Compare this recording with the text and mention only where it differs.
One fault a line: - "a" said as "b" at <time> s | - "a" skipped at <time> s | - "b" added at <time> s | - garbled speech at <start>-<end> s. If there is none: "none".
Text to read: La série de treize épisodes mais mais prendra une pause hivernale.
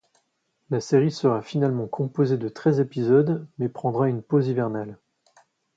- "sera finalement composée" added at 1.1 s
- "mais" skipped at 3.7 s